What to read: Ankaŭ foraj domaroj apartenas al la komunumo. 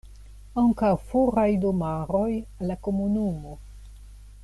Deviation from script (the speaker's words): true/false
true